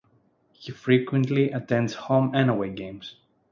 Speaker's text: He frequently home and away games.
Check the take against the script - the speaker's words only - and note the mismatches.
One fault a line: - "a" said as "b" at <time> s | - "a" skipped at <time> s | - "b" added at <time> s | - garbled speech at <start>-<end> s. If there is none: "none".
- "attends" added at 1.5 s